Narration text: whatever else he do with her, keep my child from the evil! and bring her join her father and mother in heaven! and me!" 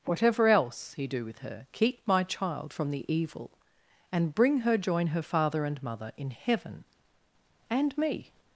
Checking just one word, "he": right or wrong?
right